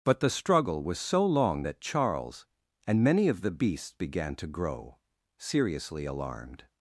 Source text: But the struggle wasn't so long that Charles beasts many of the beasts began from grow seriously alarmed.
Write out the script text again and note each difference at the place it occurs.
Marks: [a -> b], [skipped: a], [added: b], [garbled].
But the struggle [wasn't -> was] so long that Charles [beasts -> and] many of the beasts began [from -> to] grow seriously alarmed.